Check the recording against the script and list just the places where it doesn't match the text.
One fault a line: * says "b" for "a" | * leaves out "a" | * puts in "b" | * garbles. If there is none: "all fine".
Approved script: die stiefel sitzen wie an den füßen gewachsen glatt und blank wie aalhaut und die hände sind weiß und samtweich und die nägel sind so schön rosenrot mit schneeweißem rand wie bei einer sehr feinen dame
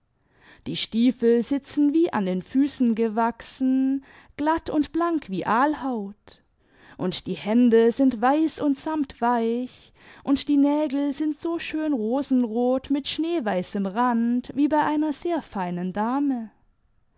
all fine